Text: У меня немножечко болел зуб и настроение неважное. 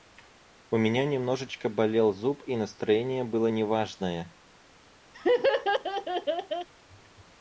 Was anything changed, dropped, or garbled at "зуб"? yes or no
no